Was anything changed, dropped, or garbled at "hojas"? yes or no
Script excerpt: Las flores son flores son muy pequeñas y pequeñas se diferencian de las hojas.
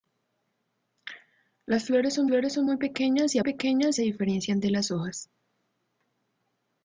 no